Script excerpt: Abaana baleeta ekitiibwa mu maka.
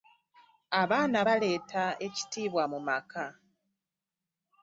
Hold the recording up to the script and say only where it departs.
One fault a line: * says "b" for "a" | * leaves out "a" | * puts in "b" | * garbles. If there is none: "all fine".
all fine